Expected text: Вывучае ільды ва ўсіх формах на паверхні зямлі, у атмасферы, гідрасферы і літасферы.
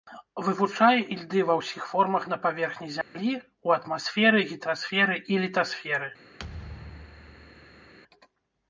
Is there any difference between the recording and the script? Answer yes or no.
no